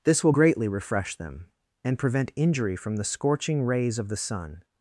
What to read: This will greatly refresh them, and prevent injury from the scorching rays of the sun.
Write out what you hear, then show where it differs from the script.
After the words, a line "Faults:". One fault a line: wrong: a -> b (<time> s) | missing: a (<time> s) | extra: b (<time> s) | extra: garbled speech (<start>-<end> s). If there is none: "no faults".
This will greatly refresh them, and prevent injury from the scorching rays of the sun.
Faults:
no faults